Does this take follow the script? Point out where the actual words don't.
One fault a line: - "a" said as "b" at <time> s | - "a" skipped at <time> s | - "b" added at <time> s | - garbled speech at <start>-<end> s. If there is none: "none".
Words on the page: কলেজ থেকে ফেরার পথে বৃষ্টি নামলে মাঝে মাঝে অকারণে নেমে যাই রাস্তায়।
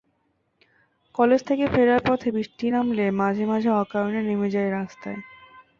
none